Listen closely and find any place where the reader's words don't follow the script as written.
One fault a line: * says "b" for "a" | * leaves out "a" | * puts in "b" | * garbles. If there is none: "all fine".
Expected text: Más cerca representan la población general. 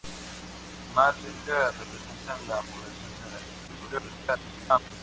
* garbles